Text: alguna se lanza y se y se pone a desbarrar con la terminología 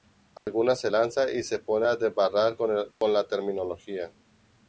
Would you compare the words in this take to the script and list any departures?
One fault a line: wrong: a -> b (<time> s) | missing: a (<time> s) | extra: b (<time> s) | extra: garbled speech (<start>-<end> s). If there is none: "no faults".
missing: y se (1.6 s)